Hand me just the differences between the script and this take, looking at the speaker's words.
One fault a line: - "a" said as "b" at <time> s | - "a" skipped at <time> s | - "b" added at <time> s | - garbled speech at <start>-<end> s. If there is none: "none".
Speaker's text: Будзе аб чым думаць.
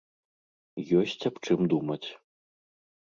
- "Будзе" said as "Ёсць" at 1.0 s